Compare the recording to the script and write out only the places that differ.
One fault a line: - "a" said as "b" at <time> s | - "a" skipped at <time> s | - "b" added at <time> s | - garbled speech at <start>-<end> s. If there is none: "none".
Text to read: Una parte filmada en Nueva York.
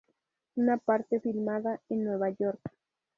none